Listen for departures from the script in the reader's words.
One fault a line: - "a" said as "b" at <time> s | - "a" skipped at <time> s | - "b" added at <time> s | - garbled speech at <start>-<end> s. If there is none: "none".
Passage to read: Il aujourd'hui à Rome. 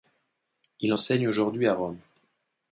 - "enseigne" added at 0.9 s